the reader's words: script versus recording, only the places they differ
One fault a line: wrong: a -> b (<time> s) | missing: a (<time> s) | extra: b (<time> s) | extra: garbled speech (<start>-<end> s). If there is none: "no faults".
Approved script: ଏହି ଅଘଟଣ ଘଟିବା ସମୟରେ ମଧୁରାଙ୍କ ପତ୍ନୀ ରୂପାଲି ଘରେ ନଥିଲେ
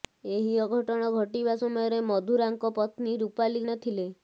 missing: ଘରେ (3.6 s)